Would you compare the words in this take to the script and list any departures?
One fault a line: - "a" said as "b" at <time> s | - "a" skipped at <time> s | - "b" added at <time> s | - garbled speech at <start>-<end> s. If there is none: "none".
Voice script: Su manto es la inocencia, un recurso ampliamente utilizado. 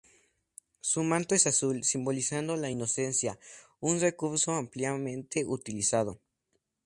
- "azul simbolizando" added at 1.4 s